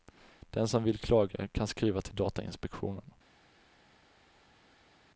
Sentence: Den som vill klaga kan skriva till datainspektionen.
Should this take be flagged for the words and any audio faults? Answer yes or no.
no